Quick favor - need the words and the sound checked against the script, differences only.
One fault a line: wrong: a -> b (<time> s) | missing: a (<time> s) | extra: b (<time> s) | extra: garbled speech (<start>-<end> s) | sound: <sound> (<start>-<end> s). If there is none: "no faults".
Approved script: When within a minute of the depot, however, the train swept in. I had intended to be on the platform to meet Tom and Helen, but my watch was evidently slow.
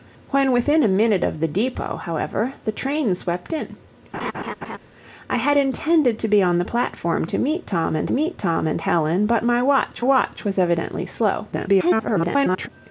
sound: laugh (4.1-4.8 s)
extra: meet Tom and (8.1 s)
extra: watch (10.0 s)
extra: garbled speech (11.5-12.7 s)